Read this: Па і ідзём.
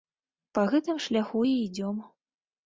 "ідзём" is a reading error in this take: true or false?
false